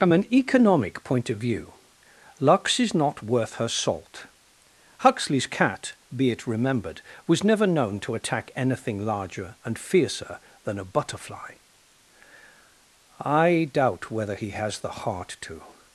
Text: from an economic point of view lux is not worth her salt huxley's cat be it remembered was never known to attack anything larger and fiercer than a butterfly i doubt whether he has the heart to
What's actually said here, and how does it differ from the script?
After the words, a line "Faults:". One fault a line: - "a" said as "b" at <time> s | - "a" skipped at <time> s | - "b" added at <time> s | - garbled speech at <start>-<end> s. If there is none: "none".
from an economic point of view lux is not worth her salt huxley's cat be it remembered was never known to attack anything larger and fiercer than a butterfly i doubt whether he has the heart to
Faults:
none